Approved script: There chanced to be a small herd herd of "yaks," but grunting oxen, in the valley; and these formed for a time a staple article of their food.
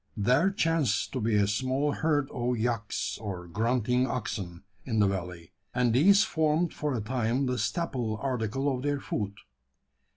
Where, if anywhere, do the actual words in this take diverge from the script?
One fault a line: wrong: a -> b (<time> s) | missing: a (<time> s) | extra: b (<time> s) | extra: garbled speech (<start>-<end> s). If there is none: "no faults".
missing: herd (2.3 s)
wrong: but -> or (3.2 s)
wrong: a -> the (7.5 s)